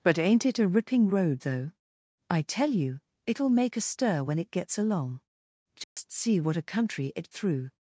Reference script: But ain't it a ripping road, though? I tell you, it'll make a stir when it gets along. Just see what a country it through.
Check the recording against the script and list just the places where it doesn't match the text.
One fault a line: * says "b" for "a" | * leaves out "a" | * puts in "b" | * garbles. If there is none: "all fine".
all fine